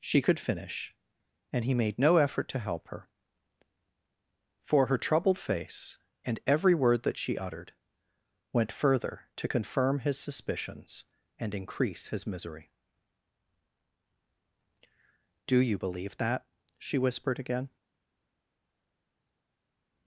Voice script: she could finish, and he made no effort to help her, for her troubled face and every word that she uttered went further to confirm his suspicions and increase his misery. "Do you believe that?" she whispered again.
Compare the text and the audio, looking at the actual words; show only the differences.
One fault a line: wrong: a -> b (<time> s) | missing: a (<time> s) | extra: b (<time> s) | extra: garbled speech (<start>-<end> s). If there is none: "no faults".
no faults